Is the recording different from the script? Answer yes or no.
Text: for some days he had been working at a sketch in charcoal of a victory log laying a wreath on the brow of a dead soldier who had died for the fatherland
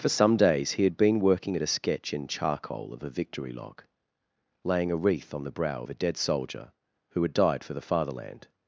no